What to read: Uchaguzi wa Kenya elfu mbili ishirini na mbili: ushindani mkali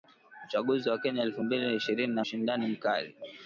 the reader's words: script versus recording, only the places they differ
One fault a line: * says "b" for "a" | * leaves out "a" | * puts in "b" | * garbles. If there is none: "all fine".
* leaves out "mbili"